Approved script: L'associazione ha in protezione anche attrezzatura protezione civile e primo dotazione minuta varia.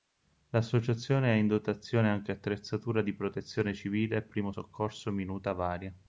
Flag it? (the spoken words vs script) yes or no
yes